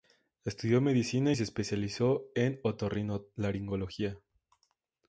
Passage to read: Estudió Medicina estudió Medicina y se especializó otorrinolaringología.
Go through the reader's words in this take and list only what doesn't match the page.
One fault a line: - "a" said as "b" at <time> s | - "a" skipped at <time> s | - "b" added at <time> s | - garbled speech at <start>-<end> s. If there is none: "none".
- "estudió Medicina" skipped at 1.3 s
- "en" added at 2.3 s